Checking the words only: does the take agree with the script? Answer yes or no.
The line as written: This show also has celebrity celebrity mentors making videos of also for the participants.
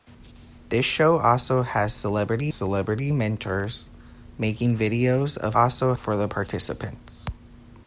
yes